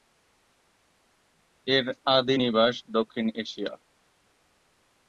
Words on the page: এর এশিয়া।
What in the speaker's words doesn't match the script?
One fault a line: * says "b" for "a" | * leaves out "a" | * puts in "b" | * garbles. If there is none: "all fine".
* puts in "আদি নিবাস দক্ষিণ"